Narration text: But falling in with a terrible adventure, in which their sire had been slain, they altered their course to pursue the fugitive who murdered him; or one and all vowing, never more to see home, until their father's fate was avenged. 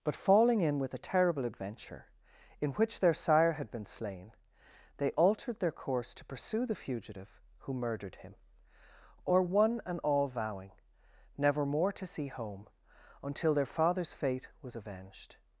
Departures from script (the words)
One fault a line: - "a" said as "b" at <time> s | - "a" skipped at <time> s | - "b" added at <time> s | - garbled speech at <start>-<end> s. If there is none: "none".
none